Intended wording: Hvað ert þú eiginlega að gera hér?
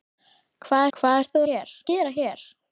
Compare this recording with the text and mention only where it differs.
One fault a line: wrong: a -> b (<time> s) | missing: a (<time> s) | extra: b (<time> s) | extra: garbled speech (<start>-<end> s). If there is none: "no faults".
extra: hvað (1.0 s)
wrong: eiginlega -> hér (1.5 s)